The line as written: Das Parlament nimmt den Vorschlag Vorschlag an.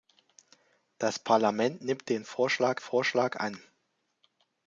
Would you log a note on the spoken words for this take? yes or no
no